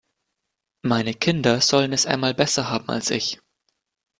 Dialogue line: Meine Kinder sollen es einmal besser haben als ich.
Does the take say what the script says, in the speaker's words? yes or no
yes